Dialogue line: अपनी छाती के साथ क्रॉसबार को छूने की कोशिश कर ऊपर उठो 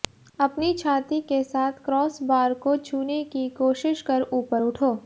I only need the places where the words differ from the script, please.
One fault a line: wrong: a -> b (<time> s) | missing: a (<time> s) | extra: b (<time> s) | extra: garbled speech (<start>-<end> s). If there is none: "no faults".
no faults